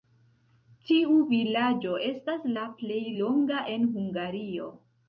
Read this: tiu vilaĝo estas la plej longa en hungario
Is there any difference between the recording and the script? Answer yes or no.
no